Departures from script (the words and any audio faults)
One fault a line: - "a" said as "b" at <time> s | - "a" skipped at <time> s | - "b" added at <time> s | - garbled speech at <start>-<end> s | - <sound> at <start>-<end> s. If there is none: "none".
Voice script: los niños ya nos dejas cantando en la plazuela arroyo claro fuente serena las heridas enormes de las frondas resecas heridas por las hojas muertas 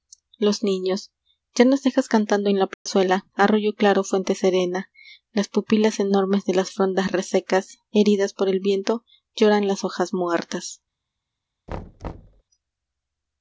- dropout at 2.7-2.9 s
- "heridas" said as "pupilas" at 5.5 s
- "el viento lloran" added at 8.5 s
- thud at 11.7-12.4 s